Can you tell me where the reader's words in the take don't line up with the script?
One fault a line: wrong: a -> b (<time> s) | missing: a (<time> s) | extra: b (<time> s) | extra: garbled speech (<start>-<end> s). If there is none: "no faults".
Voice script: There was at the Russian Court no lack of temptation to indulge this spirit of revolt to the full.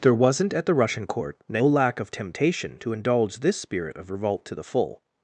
wrong: was -> wasn't (0.1 s)